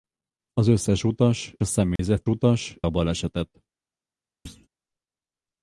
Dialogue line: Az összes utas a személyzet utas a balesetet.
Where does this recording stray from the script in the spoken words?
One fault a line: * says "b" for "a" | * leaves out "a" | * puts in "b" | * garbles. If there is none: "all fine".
all fine